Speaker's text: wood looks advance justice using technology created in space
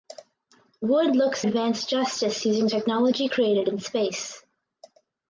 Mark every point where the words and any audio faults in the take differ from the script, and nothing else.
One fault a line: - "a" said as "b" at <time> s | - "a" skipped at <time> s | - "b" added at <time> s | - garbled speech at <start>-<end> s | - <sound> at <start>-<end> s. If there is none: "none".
none